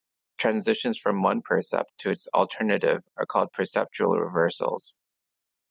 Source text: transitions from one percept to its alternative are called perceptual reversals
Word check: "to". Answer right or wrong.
right